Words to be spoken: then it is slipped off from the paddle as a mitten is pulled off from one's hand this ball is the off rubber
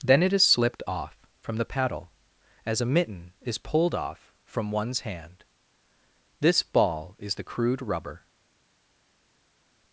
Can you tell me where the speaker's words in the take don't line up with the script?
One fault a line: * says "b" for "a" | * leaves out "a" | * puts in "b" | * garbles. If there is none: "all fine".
* says "crude" for "off"